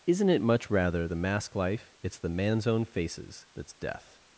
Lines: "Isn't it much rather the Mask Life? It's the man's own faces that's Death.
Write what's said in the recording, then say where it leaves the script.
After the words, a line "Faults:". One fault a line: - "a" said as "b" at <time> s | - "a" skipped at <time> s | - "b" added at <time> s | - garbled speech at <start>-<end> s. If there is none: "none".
"Isn't it much rather the Mask Life? It's the man's own faces that's Death.
Faults:
none